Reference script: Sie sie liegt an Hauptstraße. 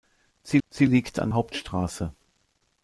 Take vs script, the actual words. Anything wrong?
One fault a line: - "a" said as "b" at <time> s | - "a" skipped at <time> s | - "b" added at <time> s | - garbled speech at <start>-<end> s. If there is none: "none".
none